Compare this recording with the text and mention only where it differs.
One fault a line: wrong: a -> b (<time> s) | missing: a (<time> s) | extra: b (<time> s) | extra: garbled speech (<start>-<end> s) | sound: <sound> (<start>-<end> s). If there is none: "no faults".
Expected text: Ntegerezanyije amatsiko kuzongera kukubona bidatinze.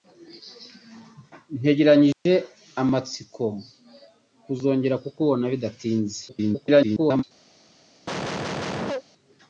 sound: dropout (2.1-2.3 s)
extra: garbled speech (6.3-7.2 s)
sound: cough (8.1-9.0 s)